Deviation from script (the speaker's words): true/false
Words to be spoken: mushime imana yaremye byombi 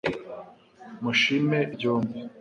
true